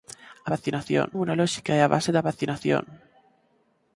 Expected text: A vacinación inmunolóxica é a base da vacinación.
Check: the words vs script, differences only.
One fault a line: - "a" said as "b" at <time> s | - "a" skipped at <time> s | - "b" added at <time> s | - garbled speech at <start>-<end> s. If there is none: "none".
none